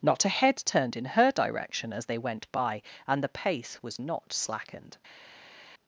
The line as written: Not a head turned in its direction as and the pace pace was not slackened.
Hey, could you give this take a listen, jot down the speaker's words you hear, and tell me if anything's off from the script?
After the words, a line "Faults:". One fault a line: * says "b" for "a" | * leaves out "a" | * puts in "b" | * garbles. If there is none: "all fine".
Not a head turned in her direction as they went by and the pace was not slackened.
Faults:
* says "her" for "its"
* puts in "they went by"
* leaves out "pace"